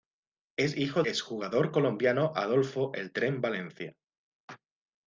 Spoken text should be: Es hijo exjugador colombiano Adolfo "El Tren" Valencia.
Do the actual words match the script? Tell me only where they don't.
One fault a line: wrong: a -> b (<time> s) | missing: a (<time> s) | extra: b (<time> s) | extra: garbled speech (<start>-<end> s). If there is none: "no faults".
no faults